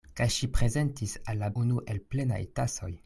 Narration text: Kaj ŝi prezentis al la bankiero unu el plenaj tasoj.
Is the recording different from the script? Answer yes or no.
yes